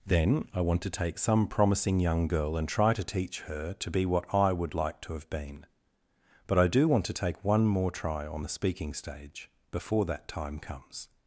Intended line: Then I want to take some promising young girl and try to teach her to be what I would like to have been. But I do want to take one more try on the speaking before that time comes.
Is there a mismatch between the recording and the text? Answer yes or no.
yes